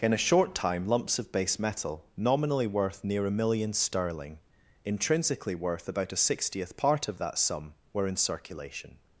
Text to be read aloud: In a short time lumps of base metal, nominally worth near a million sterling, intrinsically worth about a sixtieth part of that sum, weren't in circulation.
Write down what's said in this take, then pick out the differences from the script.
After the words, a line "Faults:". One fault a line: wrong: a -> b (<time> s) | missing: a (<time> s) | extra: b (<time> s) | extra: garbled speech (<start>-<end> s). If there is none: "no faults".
In a short time lumps of base metal, nominally worth near a million sterling, intrinsically worth about a sixtieth part of that sum, were in circulation.
Faults:
wrong: weren't -> were (7.9 s)